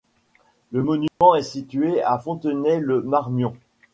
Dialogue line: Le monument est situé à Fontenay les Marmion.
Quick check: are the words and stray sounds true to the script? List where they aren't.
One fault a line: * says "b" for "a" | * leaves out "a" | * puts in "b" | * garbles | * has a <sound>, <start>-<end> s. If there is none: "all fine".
* has a dropout, 1.1-1.2 s
* says "le" for "les"